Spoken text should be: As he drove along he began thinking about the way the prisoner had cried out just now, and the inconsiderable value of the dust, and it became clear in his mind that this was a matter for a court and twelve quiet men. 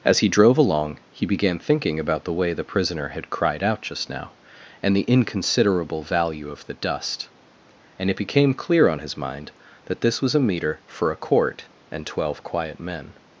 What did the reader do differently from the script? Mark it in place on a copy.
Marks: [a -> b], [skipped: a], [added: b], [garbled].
As he drove along he began thinking about the way the prisoner had cried out just now, and the inconsiderable value of the dust, and it became clear [in -> on] his mind that this was a [matter -> meter] for a court and twelve quiet men.